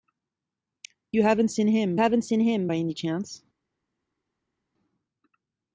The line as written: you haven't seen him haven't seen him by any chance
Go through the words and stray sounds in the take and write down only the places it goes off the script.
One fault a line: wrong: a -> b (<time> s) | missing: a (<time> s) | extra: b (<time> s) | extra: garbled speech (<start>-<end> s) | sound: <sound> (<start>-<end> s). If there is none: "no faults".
no faults